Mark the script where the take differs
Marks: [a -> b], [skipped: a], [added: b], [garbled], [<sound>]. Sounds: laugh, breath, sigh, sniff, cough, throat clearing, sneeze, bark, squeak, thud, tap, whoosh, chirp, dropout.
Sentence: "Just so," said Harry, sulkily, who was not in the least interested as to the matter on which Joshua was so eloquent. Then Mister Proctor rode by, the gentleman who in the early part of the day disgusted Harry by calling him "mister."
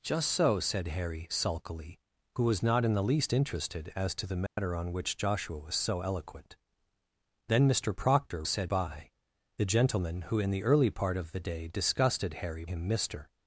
"Just so," said Harry, sulkily, who was not in the least interested as to the matter [dropout] on which Joshua was so eloquent. Then Mister Proctor [rode -> said] by, the gentleman who in the early part of the day disgusted Harry [skipped: by calling] him "mister."